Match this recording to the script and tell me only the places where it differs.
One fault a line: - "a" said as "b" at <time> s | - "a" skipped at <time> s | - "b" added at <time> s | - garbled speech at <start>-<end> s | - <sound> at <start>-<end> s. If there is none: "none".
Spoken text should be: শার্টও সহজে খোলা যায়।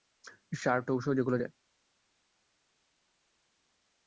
none